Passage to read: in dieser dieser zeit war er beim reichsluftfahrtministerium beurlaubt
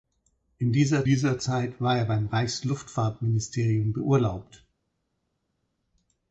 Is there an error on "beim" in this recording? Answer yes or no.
no